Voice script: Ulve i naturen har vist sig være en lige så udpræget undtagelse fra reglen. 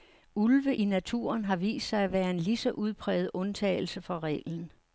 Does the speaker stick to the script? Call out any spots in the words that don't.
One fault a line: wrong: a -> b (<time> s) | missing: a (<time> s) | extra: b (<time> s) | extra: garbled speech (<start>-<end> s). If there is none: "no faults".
extra: at (2.0 s)